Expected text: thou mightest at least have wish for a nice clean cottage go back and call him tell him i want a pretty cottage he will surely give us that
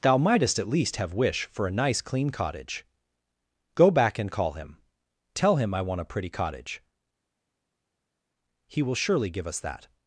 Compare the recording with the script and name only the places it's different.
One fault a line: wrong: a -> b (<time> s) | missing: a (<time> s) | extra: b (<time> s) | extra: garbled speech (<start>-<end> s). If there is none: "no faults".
no faults